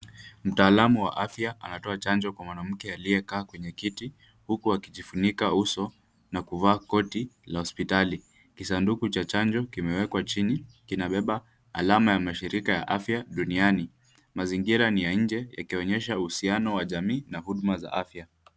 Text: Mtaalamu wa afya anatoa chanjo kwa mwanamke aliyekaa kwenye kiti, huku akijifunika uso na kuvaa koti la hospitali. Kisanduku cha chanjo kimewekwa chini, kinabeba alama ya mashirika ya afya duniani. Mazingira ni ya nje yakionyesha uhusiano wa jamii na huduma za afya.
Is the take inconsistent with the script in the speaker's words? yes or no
no